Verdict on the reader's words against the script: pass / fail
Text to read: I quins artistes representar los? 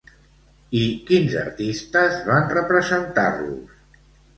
fail